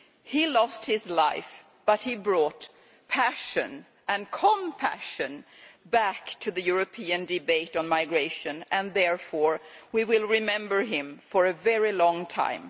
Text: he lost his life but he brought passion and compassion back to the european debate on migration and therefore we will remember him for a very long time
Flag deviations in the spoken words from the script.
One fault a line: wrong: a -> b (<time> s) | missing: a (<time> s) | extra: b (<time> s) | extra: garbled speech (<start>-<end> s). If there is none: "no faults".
no faults